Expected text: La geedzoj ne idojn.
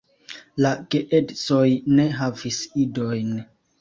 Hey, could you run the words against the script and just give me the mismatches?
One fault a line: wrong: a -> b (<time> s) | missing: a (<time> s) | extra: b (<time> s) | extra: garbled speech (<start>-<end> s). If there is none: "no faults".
extra: havis (2.2 s)